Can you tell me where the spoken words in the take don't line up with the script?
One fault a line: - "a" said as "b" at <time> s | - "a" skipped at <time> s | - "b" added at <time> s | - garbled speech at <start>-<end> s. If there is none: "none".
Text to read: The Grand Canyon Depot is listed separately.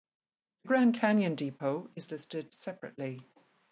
none